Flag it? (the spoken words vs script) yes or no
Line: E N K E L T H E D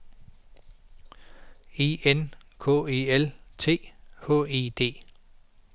no